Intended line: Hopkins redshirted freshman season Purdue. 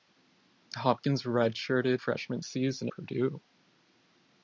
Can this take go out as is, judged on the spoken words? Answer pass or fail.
pass